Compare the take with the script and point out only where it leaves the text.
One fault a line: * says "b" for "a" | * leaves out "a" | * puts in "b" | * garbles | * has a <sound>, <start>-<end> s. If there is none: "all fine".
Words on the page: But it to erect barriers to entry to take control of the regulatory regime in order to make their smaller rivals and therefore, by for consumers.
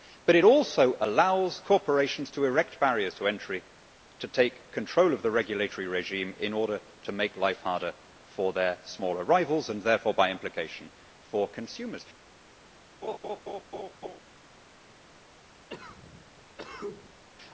* puts in "also allows corporations"
* puts in "life harder for"
* puts in "implication"
* has a laugh, 13.0-14.2 s
* has a cough, 15.7-17.2 s